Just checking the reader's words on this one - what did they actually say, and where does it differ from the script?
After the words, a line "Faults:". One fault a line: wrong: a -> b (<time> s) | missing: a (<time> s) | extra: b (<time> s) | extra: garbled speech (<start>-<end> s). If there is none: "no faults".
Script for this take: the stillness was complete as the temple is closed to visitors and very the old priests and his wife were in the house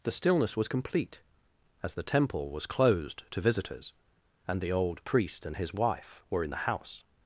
the stillness was complete as the temple was closed to visitors and the old priest and his wife were in the house
Faults:
wrong: is -> was (2.5 s)
missing: very (4.6 s)
wrong: priests -> priest (5.0 s)